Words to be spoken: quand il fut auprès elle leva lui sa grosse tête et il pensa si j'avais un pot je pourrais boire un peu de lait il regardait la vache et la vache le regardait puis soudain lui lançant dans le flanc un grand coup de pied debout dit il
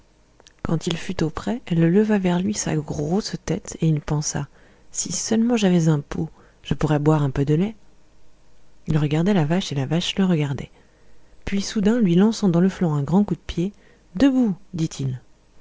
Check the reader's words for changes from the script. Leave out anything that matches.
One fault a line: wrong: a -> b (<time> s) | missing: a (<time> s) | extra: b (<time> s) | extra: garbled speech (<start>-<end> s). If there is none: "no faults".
extra: vers (2.2 s)
extra: seulement (5.1 s)